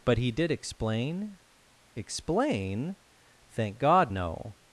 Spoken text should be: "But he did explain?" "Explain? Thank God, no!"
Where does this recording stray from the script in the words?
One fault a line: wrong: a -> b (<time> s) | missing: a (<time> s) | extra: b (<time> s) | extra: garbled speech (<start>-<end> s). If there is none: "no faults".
no faults